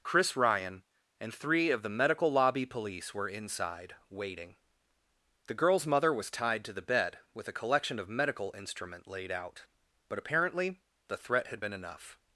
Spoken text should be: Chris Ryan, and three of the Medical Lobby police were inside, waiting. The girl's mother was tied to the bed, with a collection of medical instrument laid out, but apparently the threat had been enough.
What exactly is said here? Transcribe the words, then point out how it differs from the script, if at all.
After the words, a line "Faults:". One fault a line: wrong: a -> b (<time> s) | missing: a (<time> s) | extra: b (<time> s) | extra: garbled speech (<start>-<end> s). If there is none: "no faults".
Chris Ryan, and three of the Medical Lobby police were inside, waiting. The girl's mother was tied to the bed, with a collection of medical instrument laid out, but apparently the threat had been enough.
Faults:
no faults